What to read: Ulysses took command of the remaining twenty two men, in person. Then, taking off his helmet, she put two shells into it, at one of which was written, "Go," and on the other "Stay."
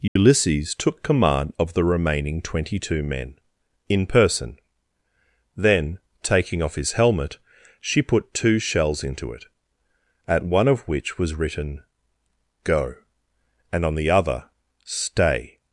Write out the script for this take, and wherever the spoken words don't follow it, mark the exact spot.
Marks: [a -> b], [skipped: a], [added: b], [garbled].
Ulysses took command of the remaining twenty two men, in person. Then, taking off his helmet, she put two shells into it, at one of which was written, "Go," and on the other "Stay."